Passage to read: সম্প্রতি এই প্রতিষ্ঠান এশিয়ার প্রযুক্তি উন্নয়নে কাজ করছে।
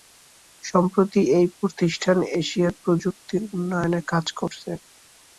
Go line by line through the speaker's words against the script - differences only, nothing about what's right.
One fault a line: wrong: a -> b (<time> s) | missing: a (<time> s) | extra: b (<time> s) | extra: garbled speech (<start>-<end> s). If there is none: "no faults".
no faults